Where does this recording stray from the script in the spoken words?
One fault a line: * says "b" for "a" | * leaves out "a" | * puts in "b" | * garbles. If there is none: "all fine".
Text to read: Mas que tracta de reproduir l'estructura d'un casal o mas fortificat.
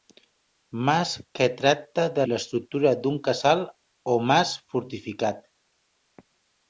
* leaves out "reproduir"